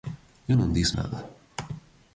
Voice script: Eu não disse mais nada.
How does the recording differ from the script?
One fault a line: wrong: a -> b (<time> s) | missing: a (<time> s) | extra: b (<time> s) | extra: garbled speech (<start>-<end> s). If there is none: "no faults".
missing: mais (1.0 s)